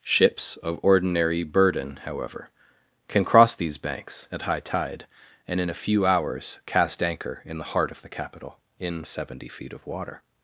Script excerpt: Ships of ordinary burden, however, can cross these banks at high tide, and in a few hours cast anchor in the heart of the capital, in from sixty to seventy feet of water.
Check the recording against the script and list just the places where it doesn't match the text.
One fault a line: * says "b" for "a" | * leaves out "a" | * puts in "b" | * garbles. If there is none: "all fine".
* leaves out "from sixty to"